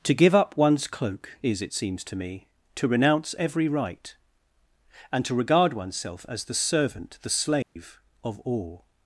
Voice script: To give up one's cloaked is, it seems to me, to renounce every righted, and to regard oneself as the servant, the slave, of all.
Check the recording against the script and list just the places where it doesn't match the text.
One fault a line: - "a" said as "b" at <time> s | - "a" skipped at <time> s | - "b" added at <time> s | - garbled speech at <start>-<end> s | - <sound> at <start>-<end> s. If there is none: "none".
- "cloaked" said as "cloak" at 0.9 s
- "righted" said as "right" at 3.7 s
- dropout at 7.6-7.8 s